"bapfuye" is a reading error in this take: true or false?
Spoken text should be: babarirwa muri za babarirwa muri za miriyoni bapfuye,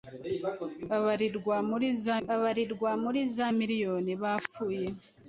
false